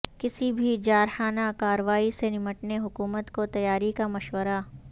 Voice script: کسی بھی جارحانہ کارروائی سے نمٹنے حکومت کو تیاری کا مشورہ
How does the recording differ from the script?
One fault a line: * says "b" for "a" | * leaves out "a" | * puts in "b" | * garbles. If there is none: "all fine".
all fine